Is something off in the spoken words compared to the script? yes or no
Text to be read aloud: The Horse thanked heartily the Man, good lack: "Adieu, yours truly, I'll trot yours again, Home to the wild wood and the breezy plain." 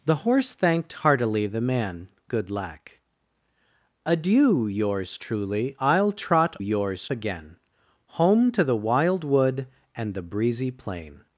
no